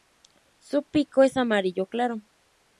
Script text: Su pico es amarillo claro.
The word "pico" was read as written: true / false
true